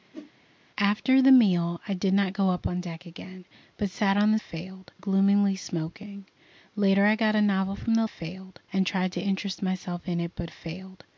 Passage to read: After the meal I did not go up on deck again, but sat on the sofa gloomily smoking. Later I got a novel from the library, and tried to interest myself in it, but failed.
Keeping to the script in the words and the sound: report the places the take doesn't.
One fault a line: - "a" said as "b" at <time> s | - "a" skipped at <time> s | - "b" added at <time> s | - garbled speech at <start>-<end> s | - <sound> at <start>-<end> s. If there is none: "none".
- whoosh at 0.1-0.3 s
- "sofa" said as "failed" at 4.4 s
- "library" said as "failed" at 8.1 s